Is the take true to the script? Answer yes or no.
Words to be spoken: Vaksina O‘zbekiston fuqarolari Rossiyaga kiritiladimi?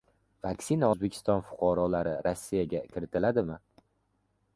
yes